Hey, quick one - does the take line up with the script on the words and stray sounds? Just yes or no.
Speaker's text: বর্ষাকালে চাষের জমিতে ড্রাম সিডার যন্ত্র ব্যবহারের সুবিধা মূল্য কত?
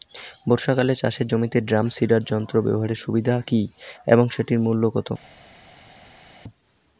no